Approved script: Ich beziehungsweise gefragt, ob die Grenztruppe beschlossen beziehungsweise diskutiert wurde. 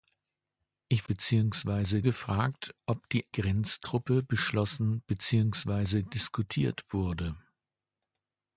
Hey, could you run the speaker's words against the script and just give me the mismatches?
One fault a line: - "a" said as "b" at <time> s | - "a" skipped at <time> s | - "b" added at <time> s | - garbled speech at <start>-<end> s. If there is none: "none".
none